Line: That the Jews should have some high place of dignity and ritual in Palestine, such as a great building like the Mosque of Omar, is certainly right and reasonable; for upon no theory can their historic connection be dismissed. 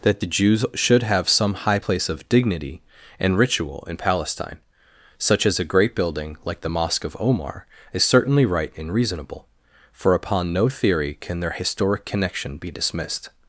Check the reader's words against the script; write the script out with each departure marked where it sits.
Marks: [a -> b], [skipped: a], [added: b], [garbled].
That the Jews should have some high place of dignity and ritual in Palestine, such as a great building like the Mosque of Omar, is certainly right and reasonable; for upon no theory can their historic connection be dismissed.